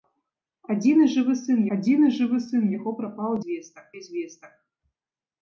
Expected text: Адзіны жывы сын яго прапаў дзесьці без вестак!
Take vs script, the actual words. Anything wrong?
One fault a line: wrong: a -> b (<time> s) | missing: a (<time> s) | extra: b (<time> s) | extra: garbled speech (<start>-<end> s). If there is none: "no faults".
extra: адзіны жывы сын (1.8 s)
wrong: дзесьці -> вестак (3.5 s)